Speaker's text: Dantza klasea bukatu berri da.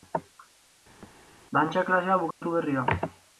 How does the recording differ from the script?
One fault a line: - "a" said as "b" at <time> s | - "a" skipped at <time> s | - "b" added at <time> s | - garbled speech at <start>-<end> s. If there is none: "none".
none